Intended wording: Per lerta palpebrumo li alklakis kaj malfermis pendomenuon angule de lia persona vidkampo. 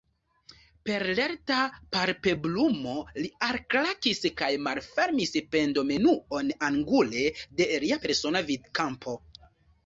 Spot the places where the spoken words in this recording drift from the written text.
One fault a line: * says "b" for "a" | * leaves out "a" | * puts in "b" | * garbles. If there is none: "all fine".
all fine